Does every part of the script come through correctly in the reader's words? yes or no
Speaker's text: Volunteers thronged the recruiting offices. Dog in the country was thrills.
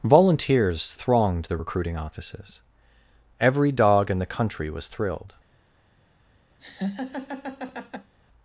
no